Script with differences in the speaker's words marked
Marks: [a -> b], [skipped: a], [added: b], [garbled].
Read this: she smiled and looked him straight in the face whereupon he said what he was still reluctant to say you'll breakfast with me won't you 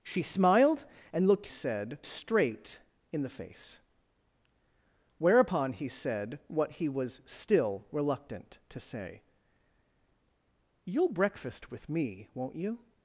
she smiled and looked [him -> said] straight in the face whereupon he said what he was still reluctant to say you'll breakfast with me won't you